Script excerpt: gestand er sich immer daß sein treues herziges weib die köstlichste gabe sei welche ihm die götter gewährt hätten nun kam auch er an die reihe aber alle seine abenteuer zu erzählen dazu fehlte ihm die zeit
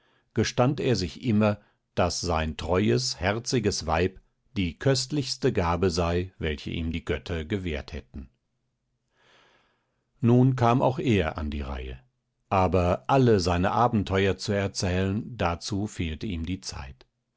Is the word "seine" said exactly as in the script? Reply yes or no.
yes